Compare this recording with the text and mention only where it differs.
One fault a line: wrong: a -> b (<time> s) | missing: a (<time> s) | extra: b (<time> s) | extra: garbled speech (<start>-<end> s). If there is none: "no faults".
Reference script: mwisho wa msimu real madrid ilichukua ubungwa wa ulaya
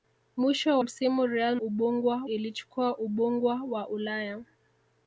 missing: wa (0.8 s)
wrong: madrid -> ubungwa (1.6 s)